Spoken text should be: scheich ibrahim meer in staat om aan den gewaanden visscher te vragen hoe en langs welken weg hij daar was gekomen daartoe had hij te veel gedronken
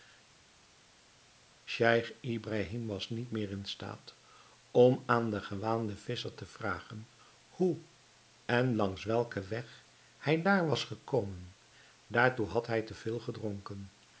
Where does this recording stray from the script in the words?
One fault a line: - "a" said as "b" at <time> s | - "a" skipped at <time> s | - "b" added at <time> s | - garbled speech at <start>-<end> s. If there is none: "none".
- "was niet" added at 2.9 s